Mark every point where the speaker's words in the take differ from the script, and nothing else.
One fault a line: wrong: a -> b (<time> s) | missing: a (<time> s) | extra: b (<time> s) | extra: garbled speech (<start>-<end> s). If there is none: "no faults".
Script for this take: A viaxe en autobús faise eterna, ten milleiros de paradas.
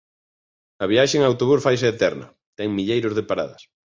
no faults